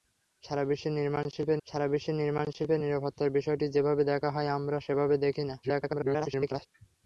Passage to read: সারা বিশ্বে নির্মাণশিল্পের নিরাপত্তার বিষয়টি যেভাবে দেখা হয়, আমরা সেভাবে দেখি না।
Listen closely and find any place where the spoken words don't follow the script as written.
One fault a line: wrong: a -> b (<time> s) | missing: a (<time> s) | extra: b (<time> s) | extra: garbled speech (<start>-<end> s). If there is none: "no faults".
extra: সারা বিশ্বে নির্মাণশিল্পের (1.7 s)
extra: garbled speech (5.6-6.7 s)